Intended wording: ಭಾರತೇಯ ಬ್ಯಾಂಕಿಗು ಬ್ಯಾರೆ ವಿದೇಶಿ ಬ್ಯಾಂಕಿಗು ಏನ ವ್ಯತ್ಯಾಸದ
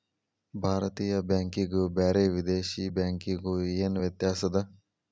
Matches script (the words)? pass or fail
pass